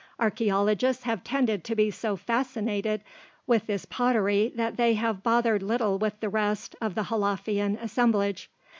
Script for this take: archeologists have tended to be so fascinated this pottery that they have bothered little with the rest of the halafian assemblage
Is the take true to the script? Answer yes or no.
no